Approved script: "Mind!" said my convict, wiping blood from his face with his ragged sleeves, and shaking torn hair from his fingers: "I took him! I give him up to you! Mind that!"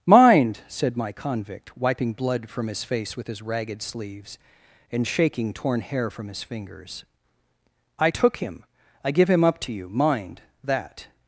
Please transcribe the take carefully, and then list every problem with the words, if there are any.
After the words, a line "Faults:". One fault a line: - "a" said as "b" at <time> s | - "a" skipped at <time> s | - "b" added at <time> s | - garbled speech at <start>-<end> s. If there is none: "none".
"Mind!" said my convict, wiping blood from his face with his ragged sleeves, and shaking torn hair from his fingers: "I took him! I give him up to you! Mind that!"
Faults:
none